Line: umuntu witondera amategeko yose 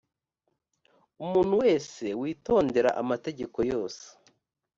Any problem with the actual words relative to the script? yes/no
yes